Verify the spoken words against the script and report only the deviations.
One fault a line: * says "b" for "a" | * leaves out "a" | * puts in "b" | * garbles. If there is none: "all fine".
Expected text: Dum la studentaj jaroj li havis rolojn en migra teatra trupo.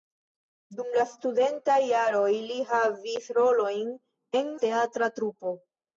* leaves out "migra"